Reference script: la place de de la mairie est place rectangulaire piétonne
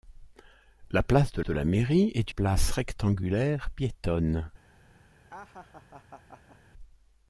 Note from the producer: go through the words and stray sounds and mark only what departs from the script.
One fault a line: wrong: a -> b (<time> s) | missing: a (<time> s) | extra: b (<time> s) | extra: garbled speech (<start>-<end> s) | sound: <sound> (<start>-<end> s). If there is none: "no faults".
sound: laugh (5.3-6.6 s)